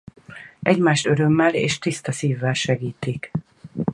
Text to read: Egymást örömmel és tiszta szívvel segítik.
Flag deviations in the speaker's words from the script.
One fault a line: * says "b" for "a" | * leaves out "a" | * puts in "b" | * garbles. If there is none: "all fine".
all fine